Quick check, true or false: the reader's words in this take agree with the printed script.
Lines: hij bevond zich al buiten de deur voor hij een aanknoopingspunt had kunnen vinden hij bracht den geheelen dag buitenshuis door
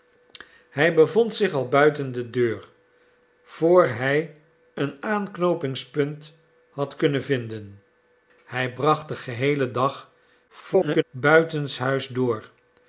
false